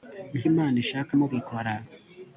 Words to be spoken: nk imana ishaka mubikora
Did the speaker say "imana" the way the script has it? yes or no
yes